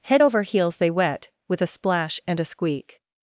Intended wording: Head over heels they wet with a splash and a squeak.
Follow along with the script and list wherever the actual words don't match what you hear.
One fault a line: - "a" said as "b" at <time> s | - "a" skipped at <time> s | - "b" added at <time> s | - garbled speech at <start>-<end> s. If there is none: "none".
none